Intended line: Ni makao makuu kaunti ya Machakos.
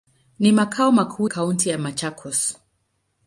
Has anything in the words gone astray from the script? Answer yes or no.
no